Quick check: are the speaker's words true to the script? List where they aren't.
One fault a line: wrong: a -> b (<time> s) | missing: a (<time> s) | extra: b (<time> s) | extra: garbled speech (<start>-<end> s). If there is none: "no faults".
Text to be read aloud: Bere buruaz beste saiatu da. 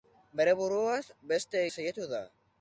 no faults